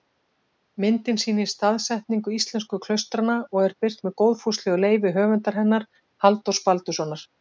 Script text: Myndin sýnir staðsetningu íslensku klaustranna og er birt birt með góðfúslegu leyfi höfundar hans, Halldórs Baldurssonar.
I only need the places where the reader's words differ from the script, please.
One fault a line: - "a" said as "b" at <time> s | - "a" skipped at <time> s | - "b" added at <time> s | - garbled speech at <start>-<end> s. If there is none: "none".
- "birt" skipped at 4.0 s
- "hans" said as "hennar" at 5.6 s